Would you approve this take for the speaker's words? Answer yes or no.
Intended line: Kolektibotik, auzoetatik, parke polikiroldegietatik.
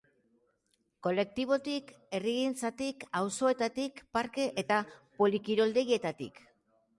no